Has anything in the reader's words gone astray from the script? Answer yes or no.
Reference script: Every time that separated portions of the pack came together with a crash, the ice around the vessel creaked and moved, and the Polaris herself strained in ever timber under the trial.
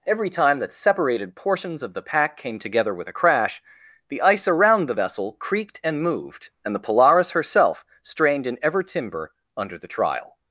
no